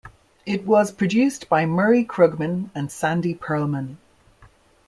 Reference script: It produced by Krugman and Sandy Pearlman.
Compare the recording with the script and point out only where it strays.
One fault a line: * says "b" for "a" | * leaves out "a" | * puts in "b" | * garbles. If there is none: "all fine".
* puts in "was"
* puts in "Murray"